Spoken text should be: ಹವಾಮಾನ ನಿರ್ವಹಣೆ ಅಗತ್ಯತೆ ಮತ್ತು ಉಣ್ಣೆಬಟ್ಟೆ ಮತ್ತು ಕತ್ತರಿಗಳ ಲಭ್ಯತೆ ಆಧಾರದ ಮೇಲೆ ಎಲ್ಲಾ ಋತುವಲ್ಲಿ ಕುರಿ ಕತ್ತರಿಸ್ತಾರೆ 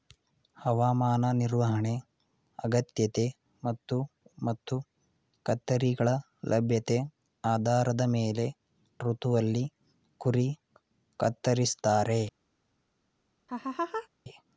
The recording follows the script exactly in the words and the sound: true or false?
false